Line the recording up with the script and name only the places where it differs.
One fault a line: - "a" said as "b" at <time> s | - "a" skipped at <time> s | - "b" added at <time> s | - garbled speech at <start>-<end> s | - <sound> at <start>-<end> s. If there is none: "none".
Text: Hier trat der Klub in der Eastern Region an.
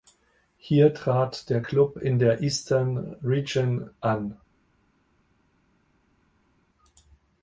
none